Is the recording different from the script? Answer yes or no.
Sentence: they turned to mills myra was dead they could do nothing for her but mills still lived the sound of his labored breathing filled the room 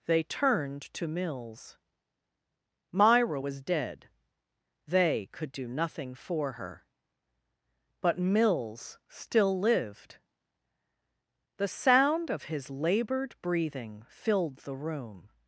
no